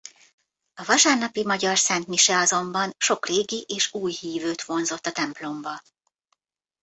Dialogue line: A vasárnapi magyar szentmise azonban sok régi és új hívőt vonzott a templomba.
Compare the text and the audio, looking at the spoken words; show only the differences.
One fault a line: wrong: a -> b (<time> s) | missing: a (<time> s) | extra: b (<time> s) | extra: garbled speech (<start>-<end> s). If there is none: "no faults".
no faults